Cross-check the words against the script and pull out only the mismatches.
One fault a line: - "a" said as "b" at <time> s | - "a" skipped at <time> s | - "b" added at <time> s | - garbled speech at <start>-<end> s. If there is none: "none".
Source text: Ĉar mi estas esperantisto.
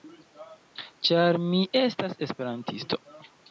none